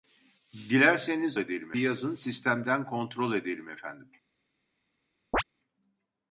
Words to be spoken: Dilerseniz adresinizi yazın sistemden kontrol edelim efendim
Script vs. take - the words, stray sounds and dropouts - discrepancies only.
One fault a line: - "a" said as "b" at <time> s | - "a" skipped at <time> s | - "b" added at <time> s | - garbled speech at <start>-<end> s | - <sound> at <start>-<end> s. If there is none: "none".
- "adresinizi" said as "edelim" at 1.4 s
- chirp at 5.3-5.4 s